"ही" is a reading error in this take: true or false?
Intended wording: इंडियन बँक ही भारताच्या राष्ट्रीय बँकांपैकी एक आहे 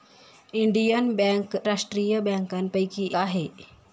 true